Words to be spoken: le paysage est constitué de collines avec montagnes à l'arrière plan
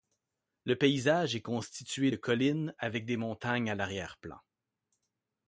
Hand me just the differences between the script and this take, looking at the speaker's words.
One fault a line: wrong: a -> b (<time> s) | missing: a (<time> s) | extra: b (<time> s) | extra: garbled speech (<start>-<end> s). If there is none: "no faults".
extra: des (3.1 s)